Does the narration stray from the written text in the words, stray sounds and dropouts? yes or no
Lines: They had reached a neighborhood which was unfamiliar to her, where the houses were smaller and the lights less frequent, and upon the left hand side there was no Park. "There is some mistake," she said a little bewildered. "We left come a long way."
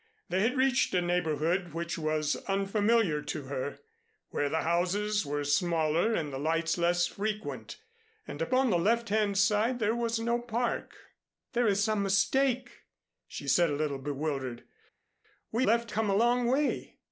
no